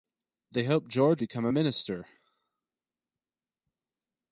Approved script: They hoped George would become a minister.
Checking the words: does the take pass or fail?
fail